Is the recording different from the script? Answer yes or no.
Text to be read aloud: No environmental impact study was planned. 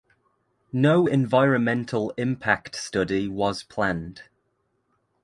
no